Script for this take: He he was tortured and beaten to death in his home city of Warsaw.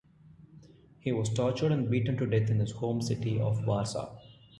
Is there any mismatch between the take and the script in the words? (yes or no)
yes